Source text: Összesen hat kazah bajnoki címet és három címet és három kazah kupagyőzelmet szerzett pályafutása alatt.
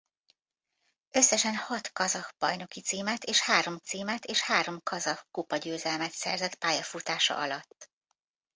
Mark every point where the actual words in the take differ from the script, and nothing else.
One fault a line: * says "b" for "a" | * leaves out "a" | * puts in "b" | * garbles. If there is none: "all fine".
all fine